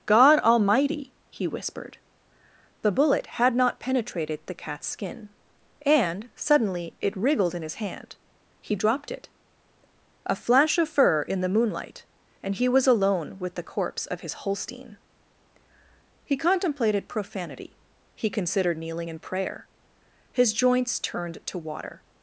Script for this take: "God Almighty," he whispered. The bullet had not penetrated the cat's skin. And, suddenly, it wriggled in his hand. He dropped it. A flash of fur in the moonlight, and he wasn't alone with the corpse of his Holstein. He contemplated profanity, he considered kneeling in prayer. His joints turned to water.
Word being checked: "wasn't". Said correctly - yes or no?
no